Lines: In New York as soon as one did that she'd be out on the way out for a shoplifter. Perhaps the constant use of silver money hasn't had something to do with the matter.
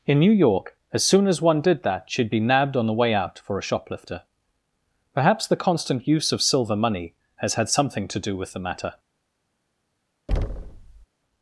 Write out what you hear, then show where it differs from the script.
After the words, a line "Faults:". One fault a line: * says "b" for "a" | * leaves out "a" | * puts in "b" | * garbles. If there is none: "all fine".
In New York as soon as one did that she'd be nabbed on the way out for a shoplifter. Perhaps the constant use of silver money has had something to do with the matter.
Faults:
* says "nabbed" for "out"
* says "has" for "hasn't"